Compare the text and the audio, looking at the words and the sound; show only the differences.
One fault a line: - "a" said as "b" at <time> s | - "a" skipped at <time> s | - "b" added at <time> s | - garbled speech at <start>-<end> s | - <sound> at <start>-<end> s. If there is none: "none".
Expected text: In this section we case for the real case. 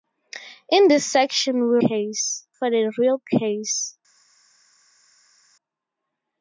none